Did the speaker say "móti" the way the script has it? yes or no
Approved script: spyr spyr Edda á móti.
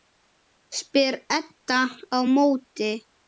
yes